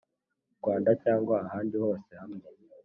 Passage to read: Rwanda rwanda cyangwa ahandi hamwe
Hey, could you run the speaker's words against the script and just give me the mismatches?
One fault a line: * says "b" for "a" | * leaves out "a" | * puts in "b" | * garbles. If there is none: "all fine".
* leaves out "rwanda"
* puts in "hose"